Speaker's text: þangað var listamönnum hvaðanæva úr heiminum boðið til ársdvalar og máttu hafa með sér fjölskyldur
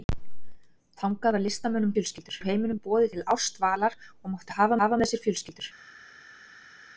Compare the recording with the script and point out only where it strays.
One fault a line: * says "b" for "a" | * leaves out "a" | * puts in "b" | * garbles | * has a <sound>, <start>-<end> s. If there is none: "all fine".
* says "fjölskyldur" for "hvaðanæva"
* puts in "hafa"